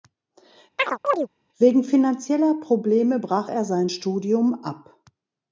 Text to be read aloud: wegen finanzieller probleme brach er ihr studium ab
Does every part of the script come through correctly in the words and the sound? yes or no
no